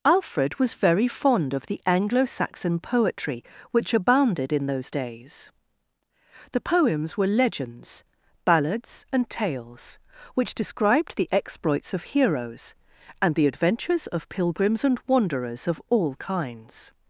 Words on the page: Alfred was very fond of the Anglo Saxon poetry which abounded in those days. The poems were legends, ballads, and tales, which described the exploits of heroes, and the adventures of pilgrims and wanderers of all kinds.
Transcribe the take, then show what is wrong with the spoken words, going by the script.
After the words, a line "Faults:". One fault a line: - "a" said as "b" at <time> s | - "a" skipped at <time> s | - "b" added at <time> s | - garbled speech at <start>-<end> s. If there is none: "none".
Alfred was very fond of the Anglo Saxon poetry which abounded in those days. The poems were legends, ballads, and tales, which described the exploits of heroes, and the adventures of pilgrims and wanderers of all kinds.
Faults:
none